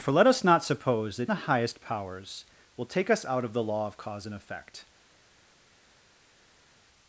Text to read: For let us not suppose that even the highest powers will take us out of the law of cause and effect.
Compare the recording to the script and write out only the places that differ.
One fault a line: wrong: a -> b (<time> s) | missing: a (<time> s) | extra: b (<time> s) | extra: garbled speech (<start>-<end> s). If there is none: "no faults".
missing: even (1.3 s)